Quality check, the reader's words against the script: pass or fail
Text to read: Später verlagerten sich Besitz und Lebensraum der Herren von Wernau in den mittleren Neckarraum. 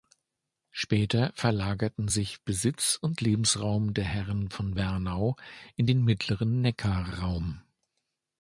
pass